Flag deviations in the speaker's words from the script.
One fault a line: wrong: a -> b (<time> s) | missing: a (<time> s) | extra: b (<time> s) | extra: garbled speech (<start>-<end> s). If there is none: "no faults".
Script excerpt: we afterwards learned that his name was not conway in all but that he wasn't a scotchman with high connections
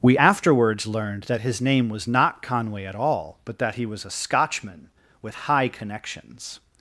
wrong: in -> at (2.9 s)
wrong: wasn't -> was (3.9 s)